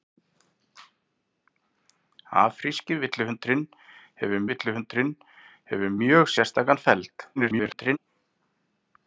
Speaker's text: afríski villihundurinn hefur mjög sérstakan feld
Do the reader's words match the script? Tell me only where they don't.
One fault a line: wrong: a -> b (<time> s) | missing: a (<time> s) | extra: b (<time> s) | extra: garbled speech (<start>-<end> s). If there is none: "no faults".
extra: villihundurinn hefur (4.5 s)
extra: garbled speech (7.4-8.0 s)